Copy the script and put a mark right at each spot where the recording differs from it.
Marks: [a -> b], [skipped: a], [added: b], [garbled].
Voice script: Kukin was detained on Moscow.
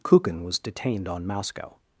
Kukin was detained on Moscow.